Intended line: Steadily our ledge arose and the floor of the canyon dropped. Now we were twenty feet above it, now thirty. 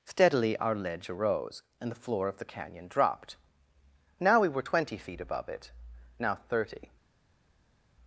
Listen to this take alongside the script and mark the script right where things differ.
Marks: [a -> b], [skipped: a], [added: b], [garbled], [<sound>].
Steadily our ledge arose and the floor of the canyon dropped. Now we were twenty feet above it, now thirty.